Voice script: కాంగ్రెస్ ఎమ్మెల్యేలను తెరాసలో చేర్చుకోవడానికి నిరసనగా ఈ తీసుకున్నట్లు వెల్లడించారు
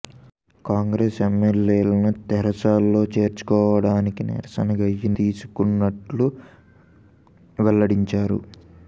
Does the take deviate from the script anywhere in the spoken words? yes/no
no